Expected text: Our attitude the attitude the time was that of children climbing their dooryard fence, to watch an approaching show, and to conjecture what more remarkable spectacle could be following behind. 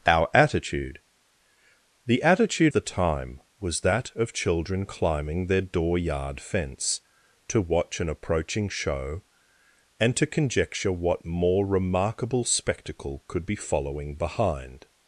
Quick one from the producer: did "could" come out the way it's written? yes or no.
yes